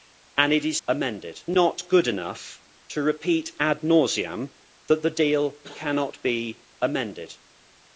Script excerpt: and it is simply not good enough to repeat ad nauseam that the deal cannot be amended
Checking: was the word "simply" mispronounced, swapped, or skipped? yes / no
yes